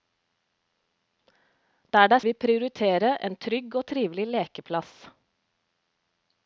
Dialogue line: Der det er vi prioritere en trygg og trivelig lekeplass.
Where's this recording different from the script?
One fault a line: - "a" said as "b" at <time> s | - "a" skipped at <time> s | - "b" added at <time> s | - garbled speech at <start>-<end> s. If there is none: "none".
none